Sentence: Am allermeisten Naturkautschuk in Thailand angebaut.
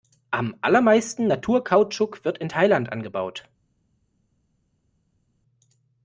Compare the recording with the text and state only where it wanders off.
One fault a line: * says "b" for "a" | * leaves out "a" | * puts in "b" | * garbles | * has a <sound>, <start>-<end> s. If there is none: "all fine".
* puts in "wird"